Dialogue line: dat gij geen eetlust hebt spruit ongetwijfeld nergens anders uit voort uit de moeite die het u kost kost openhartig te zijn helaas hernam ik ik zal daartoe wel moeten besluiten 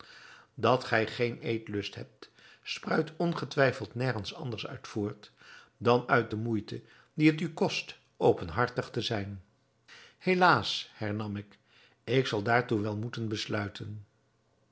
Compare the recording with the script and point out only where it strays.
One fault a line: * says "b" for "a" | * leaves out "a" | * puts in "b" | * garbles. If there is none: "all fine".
* puts in "dan"
* leaves out "kost"